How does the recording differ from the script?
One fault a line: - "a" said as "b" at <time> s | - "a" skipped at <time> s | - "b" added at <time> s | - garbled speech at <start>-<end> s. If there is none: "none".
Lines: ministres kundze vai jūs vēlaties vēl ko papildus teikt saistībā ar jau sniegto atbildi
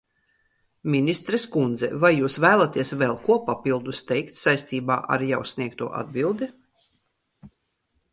none